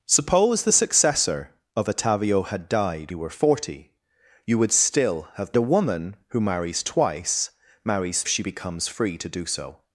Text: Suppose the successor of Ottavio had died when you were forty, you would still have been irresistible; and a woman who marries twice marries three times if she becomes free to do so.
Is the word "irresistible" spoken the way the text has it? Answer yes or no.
no